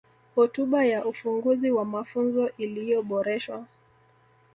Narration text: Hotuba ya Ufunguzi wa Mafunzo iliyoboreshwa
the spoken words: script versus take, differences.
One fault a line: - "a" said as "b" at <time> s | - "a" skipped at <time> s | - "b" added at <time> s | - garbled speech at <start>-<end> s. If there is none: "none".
none